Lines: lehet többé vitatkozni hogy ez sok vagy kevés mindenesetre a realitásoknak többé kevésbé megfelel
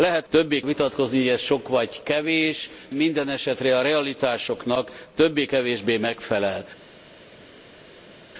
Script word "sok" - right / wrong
right